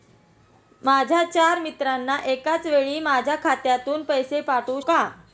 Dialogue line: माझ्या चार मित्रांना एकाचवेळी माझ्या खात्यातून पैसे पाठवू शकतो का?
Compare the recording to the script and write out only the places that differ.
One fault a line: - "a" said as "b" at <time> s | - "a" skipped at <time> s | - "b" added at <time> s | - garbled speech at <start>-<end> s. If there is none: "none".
- "शकतो" skipped at 4.8 s